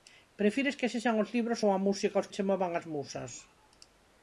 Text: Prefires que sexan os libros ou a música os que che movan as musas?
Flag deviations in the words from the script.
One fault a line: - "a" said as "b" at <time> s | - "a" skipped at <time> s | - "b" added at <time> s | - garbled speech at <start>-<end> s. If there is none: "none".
- "que" skipped at 2.3 s